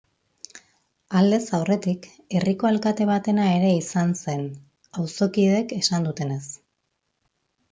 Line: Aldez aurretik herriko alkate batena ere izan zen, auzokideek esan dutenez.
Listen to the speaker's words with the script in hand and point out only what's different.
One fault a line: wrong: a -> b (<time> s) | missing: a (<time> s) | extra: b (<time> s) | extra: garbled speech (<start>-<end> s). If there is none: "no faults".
no faults